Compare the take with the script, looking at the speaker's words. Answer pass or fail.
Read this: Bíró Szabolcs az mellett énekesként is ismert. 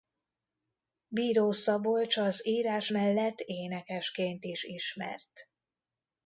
fail